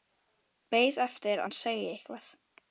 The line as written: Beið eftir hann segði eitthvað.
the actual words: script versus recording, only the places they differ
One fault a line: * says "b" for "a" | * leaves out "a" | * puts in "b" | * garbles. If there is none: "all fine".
all fine